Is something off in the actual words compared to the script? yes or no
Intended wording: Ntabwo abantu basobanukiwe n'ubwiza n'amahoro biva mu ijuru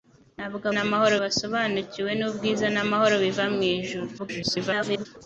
yes